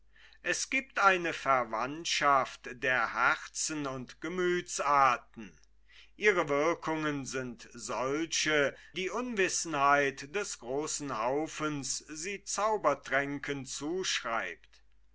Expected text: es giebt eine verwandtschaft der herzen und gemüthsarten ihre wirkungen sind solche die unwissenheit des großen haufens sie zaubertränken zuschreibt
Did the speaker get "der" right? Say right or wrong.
right